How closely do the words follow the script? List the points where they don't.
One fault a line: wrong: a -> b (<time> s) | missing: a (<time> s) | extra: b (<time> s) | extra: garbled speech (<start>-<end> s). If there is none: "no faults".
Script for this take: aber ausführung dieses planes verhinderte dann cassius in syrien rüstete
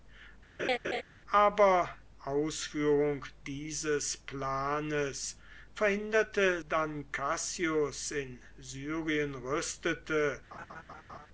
no faults